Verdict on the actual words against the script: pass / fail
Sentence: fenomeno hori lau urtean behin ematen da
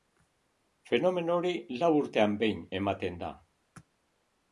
pass